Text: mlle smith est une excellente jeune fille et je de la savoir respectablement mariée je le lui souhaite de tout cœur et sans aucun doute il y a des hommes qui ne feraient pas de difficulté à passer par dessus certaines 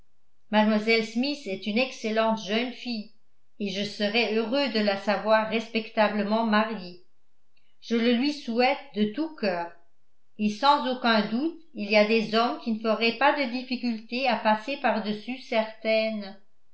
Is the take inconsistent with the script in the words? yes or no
yes